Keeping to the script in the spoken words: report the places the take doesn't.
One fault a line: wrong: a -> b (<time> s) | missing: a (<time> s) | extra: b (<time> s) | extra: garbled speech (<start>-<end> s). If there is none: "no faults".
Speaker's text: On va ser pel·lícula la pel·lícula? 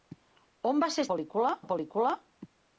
no faults